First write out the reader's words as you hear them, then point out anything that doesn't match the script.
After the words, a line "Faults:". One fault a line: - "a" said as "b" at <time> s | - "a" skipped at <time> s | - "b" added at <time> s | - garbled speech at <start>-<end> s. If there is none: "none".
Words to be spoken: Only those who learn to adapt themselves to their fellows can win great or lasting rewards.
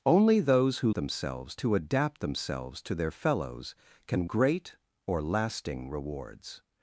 Only those who themselves to adapt themselves to their fellows can great or lasting rewards.
Faults:
- "learn" said as "themselves" at 0.9 s
- "win" skipped at 4.3 s